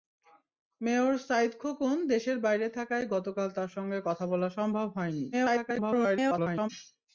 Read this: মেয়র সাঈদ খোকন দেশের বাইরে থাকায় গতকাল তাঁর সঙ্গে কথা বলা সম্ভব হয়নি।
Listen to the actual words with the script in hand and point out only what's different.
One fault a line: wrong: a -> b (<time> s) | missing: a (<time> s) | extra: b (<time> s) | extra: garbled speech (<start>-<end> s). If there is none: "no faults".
extra: garbled speech (5.3-6.7 s)